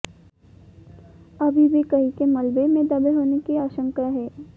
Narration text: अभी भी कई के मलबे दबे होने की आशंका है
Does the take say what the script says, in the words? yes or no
no